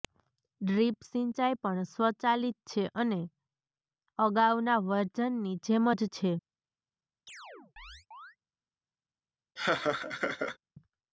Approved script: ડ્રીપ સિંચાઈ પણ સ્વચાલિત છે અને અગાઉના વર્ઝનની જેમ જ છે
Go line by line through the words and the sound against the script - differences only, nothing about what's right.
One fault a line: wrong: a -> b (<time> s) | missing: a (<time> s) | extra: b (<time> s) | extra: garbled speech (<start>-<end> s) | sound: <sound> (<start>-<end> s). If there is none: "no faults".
sound: chirp (7.3-8.4 s)
sound: laugh (9.6-10.6 s)